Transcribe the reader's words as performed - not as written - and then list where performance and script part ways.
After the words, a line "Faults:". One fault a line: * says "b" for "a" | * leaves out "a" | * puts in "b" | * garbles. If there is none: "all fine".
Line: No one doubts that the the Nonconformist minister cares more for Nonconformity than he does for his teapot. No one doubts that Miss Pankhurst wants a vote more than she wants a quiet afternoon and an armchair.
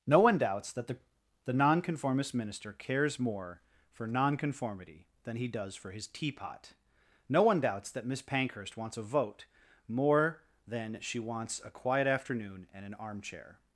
No one doubts that the the Nonconformist minister cares more for Nonconformity than he does for his teapot. No one doubts that Miss Pankhurst wants a vote more than she wants a quiet afternoon and an armchair.
Faults:
all fine